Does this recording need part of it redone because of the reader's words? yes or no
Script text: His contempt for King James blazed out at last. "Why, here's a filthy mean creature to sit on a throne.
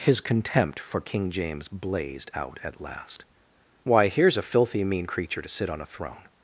no